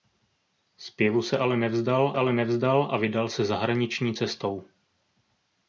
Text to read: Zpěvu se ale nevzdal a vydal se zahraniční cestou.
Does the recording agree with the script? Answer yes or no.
no